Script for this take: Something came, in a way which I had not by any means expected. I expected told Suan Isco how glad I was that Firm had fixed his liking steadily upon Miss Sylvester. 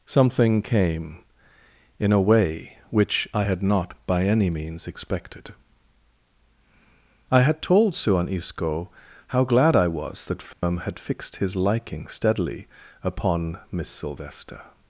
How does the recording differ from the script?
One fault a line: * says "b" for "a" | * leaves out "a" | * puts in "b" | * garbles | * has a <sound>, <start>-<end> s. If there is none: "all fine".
* says "had" for "expected"
* has a dropout, 10.5-10.6 s